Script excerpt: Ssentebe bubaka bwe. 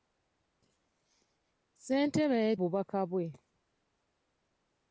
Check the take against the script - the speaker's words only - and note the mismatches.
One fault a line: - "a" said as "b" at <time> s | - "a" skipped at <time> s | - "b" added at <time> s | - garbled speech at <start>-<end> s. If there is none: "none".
none